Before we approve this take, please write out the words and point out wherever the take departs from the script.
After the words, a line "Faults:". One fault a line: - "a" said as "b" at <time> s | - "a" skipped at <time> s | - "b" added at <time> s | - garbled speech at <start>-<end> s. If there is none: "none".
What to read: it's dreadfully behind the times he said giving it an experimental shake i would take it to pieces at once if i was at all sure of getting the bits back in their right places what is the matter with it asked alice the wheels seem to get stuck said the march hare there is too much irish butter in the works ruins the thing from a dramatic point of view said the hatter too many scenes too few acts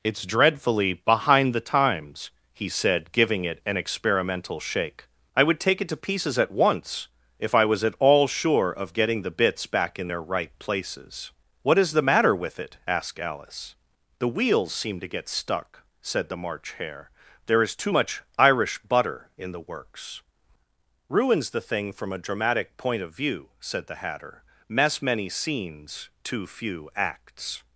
it's dreadfully behind the times he said giving it an experimental shake i would take it to pieces at once if i was at all sure of getting the bits back in their right places what is the matter with it asked alice the wheels seem to get stuck said the march hare there is too much irish butter in the works ruins the thing from a dramatic point of view said the hatter mess many scenes too few acts
Faults:
- "too" said as "mess" at 24.7 s